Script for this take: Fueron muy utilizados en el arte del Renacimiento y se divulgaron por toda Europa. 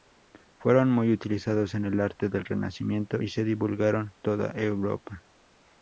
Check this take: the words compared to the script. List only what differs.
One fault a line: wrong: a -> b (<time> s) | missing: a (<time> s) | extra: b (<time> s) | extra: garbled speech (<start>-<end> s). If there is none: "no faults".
missing: por (4.1 s)